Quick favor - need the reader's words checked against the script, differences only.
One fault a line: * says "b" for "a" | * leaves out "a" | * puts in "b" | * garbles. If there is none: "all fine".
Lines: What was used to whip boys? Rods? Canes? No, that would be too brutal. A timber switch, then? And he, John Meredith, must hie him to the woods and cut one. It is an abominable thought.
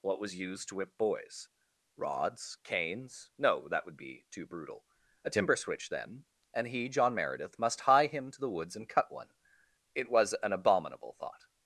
* says "was" for "is"